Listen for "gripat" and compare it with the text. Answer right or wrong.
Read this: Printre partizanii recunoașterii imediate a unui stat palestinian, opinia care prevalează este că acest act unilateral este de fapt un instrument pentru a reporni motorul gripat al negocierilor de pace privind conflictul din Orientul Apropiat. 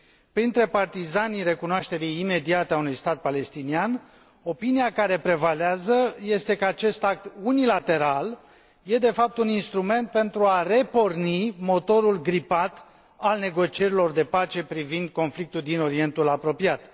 right